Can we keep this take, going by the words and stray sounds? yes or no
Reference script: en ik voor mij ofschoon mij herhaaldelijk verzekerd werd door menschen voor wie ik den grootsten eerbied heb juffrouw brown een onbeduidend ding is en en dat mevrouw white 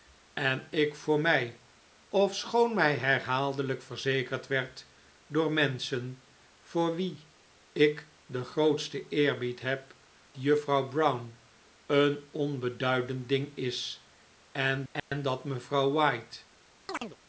no